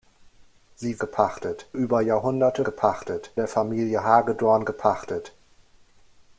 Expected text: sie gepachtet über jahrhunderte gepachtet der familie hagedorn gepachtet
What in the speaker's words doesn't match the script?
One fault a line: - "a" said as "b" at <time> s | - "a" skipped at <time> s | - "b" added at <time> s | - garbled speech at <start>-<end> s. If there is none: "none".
none